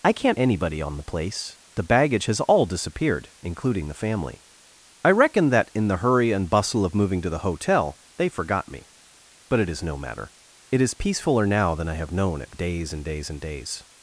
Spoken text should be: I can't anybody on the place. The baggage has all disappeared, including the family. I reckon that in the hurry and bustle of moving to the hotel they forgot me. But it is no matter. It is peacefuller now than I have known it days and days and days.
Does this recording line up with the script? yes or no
yes